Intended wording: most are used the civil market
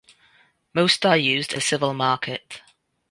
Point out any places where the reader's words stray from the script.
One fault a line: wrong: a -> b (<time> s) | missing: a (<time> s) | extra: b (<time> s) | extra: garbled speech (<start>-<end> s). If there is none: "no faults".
no faults